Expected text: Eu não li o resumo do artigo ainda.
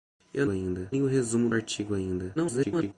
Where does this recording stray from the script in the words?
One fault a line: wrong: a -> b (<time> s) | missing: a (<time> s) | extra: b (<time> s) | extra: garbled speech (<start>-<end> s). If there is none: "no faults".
wrong: não -> ainda (0.5 s)
missing: do (1.5 s)
extra: garbled speech (2.3-2.9 s)